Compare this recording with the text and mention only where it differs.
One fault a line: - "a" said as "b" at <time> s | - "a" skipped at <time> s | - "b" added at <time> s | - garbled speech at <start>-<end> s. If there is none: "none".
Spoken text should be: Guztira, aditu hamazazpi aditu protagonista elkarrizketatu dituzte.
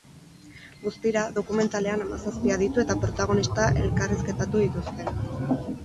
- "aditu" said as "dokumentalean" at 1.4 s
- "eta" added at 2.9 s